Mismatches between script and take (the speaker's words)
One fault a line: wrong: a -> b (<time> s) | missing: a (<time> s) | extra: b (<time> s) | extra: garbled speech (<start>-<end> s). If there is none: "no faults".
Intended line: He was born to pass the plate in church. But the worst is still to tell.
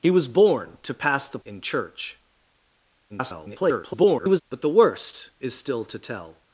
missing: plate (1.4 s)
extra: garbled speech (3.1-4.4 s)